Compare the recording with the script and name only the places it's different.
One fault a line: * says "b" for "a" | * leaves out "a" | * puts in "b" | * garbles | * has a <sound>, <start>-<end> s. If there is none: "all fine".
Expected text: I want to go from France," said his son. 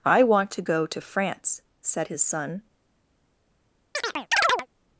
* says "to" for "from"
* has a chirp, 3.9-4.7 s